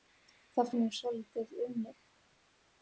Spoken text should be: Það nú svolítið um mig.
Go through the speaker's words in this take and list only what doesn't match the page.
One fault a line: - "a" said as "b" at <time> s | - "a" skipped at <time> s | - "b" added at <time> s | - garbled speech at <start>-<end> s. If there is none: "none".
none